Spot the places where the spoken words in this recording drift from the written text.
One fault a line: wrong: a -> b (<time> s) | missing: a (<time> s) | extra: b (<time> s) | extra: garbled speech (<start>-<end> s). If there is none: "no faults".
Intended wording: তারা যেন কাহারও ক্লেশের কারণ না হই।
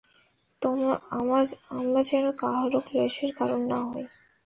wrong: তারা -> আমরা (1.7 s)